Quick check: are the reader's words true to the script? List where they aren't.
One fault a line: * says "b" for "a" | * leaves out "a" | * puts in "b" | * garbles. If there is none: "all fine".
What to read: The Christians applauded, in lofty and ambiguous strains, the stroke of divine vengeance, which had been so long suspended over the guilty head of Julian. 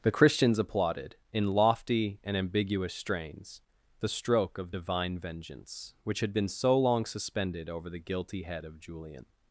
all fine